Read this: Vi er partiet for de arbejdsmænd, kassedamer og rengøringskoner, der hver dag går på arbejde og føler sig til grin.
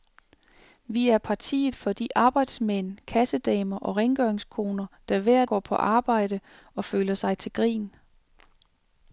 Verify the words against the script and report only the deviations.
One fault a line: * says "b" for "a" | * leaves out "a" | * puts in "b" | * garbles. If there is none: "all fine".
* leaves out "dag"